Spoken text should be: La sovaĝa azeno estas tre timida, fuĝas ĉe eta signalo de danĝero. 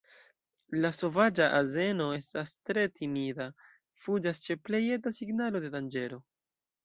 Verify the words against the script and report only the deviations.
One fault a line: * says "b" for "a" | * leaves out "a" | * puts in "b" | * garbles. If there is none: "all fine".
* puts in "plej"